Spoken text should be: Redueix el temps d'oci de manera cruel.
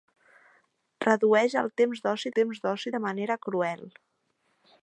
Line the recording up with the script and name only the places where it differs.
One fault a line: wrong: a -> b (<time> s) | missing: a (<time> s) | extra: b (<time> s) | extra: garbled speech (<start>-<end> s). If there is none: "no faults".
extra: temps d'oci (2.4 s)